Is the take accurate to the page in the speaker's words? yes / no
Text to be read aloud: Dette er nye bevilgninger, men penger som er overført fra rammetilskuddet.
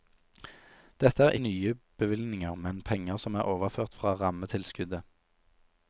yes